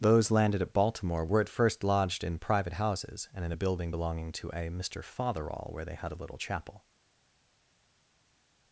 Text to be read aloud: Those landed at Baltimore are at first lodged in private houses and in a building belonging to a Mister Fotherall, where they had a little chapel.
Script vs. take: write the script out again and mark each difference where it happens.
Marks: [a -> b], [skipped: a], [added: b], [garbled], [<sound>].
Those landed at Baltimore [are -> were] at first lodged in private houses and in a building belonging to a Mister Fotherall, where they had a little chapel.